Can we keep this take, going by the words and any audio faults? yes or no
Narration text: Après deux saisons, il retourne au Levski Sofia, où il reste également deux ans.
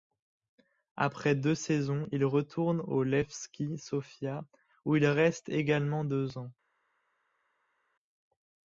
yes